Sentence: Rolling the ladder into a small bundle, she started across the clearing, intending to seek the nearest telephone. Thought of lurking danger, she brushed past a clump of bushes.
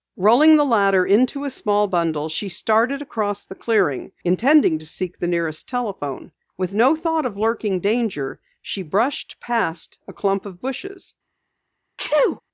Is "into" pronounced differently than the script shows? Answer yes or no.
no